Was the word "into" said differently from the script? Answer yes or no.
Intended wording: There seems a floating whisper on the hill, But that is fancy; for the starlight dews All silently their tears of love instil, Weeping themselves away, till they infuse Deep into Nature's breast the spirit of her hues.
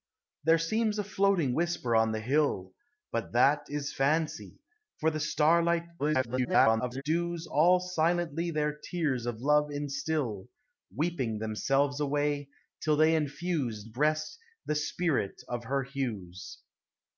yes